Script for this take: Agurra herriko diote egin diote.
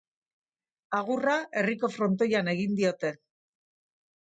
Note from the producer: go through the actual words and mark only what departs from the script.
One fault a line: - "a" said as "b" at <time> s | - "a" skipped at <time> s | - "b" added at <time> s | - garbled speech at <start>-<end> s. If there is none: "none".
- "diote" said as "frontoian" at 2.0 s